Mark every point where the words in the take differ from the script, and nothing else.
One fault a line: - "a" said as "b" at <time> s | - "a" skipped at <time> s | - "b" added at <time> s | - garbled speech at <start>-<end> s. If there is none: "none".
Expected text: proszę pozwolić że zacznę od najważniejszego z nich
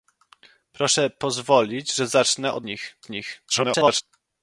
- "najważniejszego" said as "nich" at 2.6 s
- garbled speech at 3.5-4.0 s